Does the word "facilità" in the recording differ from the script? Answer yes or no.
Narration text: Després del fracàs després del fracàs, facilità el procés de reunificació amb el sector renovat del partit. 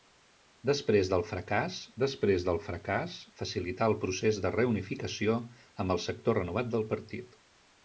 no